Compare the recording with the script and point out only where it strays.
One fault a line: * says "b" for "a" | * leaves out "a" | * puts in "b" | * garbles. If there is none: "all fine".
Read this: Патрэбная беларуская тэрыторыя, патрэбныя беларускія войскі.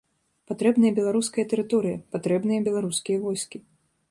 all fine